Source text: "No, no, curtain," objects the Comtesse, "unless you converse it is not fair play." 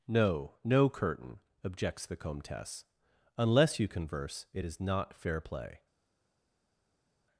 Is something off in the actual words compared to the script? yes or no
no